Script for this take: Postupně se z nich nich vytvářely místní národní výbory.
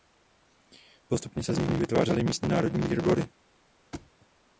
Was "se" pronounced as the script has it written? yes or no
yes